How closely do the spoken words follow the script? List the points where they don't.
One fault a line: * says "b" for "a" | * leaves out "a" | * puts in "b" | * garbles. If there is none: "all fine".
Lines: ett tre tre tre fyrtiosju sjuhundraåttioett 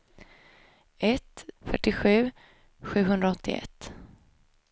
* leaves out "tre tre tre"